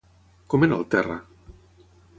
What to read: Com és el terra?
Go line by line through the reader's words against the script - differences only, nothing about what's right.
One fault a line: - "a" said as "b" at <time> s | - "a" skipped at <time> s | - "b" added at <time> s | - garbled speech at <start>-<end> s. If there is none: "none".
- "és" said as "era" at 0.7 s